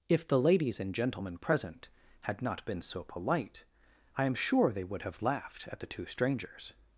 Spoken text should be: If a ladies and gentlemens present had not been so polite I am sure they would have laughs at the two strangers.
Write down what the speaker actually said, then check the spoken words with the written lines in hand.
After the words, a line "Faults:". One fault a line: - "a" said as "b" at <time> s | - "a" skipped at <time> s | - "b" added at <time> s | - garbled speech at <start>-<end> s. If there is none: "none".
If the ladies and gentlemen present had not been so polite I am sure they would have laughed at the two strangers.
Faults:
- "a" said as "the" at 0.3 s
- "gentlemens" said as "gentlemen" at 0.9 s
- "laughs" said as "laughed" at 5.2 s